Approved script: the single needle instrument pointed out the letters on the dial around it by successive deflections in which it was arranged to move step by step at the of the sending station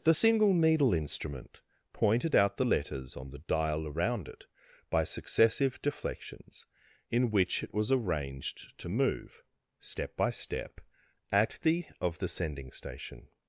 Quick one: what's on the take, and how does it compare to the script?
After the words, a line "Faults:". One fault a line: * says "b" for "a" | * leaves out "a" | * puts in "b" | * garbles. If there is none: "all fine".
the single needle instrument pointed out the letters on the dial around it by successive deflections in which it was arranged to move step by step at the of the sending station
Faults:
all fine